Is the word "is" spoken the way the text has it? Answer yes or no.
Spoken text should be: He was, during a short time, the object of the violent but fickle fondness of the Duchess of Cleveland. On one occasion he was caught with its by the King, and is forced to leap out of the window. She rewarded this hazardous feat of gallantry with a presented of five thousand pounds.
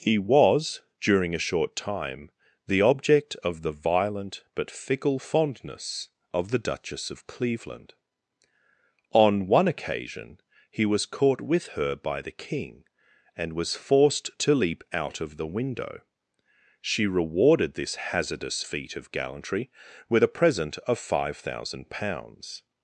no